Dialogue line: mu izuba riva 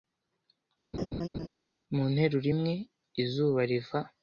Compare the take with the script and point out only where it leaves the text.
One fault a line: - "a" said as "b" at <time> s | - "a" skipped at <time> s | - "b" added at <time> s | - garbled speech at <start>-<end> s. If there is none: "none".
- "nteruro imwe" added at 2.1 s